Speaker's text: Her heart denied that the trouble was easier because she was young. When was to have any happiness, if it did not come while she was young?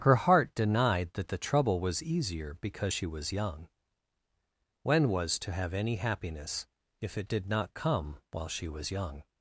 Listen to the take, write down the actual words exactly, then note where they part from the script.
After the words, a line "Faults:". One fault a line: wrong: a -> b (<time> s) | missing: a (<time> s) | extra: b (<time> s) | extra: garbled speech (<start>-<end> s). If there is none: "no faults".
Her heart denied that the trouble was easier because she was young. When was to have any happiness, if it did not come while she was young?
Faults:
no faults